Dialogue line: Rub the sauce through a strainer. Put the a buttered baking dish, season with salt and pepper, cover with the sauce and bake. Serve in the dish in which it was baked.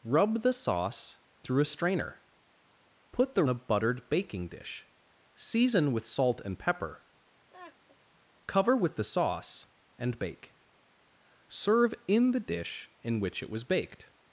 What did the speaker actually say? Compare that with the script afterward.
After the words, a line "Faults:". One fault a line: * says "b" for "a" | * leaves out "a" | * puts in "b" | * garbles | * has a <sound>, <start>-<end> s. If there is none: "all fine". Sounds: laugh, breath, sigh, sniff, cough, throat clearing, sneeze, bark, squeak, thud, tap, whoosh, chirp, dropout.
Rub the sauce through a strainer. Put the a buttered baking dish, season with salt and pepper, cover with the sauce and bake. Serve in the dish in which it was baked.
Faults:
* has a laugh, 7.5-8.0 s